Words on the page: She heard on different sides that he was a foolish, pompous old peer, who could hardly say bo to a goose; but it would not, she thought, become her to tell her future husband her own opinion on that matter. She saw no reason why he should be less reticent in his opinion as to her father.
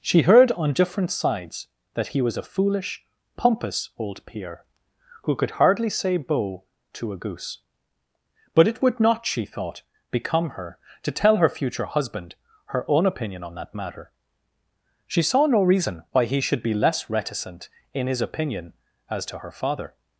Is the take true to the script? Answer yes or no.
yes